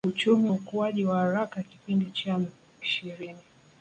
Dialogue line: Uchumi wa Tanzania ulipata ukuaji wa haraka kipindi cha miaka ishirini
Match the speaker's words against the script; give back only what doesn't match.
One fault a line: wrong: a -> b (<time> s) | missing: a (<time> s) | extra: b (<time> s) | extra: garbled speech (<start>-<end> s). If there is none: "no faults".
missing: wa Tanzania ulipata (0.5 s)
missing: miaka (2.4 s)